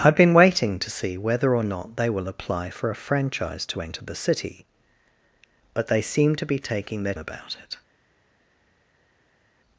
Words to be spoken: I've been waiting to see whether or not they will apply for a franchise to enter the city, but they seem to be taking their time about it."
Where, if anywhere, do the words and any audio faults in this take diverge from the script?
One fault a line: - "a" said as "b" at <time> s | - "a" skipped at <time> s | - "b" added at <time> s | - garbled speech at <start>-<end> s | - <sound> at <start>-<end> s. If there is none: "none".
- "time" skipped at 7.1 s